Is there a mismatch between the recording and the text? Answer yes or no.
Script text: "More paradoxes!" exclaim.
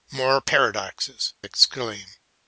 no